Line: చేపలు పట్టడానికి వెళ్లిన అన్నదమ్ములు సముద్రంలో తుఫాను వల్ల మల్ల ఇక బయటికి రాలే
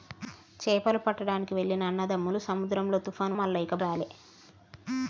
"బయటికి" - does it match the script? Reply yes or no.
no